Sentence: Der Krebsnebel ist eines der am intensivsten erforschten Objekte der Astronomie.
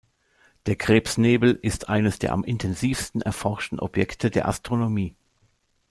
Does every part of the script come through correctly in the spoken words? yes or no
yes